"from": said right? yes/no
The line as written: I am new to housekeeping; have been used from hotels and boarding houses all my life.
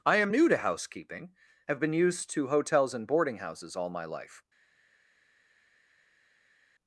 no